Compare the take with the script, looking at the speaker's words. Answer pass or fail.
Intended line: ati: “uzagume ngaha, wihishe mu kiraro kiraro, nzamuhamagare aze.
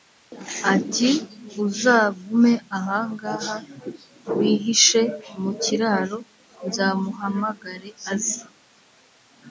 fail